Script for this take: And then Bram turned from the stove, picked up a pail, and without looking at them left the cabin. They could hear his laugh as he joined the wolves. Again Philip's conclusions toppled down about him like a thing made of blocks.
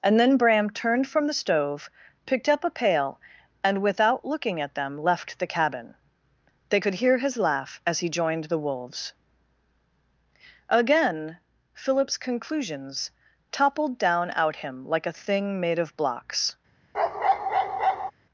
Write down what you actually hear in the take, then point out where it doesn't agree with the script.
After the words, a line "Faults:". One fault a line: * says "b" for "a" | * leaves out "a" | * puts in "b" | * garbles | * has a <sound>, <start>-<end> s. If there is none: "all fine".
And then Bram turned from the stove, picked up a pail, and without looking at them left the cabin. They could hear his laugh as he joined the wolves. Again Philip's conclusions toppled down out him like a thing made of blocks.
Faults:
* says "out" for "about"
* has a bark, 16.9-18.1 s